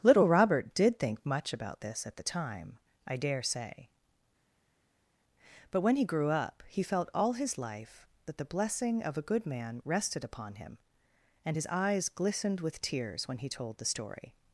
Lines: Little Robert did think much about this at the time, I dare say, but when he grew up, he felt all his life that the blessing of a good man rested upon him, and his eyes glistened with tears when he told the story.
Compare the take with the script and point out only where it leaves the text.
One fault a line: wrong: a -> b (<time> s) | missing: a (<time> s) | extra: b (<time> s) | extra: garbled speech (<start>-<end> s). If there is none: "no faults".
no faults